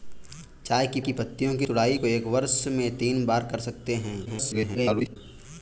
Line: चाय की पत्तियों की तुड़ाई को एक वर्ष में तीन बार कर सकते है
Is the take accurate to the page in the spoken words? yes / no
no